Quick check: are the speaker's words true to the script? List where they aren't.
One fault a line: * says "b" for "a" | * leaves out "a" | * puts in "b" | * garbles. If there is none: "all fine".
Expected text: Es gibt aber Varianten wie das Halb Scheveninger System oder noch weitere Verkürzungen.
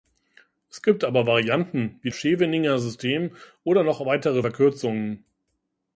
* leaves out "das Halb"